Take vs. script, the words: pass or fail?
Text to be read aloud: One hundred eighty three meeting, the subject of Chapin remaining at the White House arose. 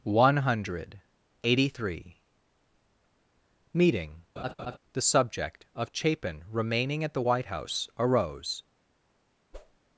pass